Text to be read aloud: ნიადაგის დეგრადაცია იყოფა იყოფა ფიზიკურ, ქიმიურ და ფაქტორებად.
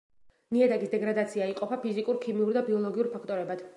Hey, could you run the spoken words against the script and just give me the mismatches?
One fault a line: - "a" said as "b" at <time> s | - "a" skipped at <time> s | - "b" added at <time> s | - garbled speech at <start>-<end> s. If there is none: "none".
- "იყოფა" skipped at 1.8 s
- "ბიოლოგიურ" added at 2.7 s